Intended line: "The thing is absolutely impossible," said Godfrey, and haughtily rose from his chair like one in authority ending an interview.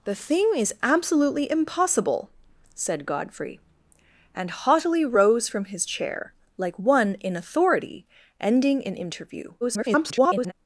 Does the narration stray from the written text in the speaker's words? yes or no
yes